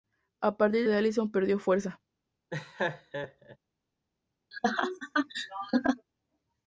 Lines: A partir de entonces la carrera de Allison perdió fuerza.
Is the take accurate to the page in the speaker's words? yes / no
no